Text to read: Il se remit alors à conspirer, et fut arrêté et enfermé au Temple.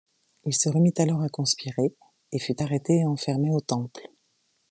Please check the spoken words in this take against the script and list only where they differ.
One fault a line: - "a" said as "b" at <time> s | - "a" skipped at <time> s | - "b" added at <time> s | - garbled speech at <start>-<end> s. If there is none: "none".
none